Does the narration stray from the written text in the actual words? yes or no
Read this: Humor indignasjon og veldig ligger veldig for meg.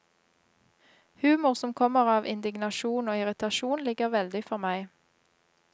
yes